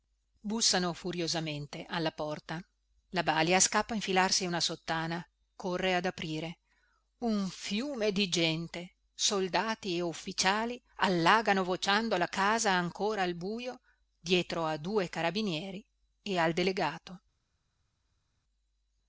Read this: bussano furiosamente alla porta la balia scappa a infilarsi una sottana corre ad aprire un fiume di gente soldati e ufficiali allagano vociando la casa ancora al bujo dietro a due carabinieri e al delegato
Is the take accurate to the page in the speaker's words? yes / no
yes